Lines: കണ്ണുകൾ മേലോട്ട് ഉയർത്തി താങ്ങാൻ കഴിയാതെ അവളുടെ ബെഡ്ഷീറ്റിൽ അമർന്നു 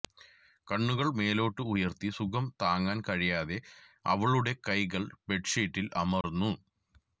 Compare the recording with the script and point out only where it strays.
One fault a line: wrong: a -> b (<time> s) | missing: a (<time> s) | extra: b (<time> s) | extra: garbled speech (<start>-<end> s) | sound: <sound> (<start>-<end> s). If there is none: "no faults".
extra: സുഖം (2.2 s)
extra: കൈകൾ (4.7 s)
sound: dropout (6.2-6.2 s)